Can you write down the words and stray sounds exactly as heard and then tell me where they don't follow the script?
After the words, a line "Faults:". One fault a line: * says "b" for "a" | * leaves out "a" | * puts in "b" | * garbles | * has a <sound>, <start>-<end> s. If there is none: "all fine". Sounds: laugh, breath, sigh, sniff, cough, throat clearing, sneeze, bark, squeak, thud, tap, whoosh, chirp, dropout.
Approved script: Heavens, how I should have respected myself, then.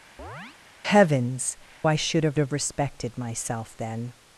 Heavens, I should have have respected myself, then.
Faults:
* has a chirp, 0.2-0.6 s
* leaves out "how"
* puts in "have"